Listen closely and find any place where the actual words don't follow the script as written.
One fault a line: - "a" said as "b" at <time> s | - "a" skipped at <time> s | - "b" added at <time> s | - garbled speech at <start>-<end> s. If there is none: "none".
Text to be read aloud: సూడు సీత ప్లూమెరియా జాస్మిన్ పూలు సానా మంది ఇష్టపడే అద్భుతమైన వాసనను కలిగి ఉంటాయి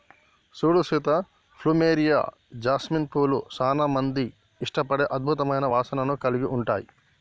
none